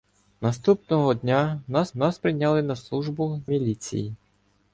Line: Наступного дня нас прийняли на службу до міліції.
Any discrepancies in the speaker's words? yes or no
yes